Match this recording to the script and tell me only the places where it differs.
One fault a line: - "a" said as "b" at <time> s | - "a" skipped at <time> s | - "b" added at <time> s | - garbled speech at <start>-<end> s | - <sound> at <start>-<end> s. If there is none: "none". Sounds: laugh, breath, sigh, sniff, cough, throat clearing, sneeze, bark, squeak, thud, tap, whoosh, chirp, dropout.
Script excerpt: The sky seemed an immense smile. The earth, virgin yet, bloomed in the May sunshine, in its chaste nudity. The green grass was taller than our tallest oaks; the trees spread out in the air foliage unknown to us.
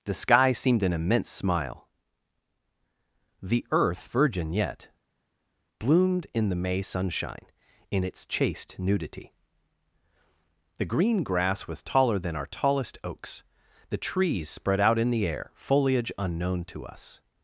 none